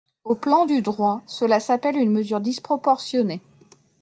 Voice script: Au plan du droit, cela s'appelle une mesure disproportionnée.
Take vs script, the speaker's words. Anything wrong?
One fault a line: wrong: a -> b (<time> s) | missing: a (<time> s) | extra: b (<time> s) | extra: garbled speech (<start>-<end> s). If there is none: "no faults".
no faults